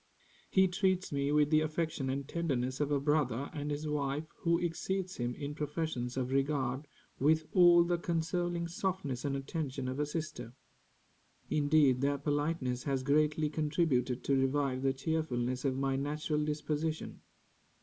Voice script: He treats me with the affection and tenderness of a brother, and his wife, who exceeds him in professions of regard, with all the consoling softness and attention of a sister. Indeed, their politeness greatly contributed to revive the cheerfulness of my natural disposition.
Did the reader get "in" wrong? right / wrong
right